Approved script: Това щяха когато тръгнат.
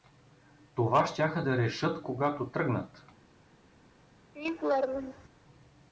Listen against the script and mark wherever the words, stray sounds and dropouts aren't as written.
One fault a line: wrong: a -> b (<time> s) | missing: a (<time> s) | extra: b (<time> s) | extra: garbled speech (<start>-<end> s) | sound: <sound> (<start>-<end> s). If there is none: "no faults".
extra: да решат (1.4 s)
sound: laugh (4.3-5.3 s)